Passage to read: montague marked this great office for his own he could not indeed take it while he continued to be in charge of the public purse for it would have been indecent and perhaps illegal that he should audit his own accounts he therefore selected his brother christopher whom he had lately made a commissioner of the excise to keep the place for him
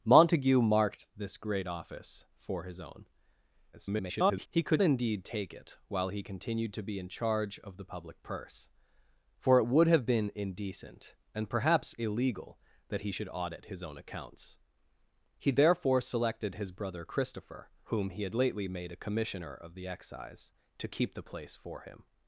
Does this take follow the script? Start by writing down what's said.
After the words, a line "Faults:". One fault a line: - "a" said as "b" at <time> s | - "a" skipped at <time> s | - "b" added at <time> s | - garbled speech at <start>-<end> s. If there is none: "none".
montague marked this great office for his own [garbled] he could indeed take it while he continued to be in charge of the public purse for it would have been indecent and perhaps illegal that he should audit his own accounts he therefore selected his brother christopher whom he had lately made a commissioner of the excise to keep the place for him
Faults:
- garbled speech at 3.7-4.5 s
- "not" skipped at 4.8 s